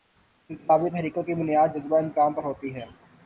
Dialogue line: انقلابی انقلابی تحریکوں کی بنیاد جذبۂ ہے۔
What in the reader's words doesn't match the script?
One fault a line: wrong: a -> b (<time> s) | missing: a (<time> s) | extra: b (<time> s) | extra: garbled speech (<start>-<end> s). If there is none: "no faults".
missing: انقلابی (0.9 s)
extra: انتقام پر ہوتی (2.0 s)